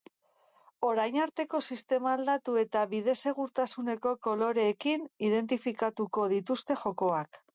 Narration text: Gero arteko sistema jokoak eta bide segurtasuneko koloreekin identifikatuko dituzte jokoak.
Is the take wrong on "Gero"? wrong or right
wrong